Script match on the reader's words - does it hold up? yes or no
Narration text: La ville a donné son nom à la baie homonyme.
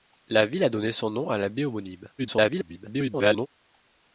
no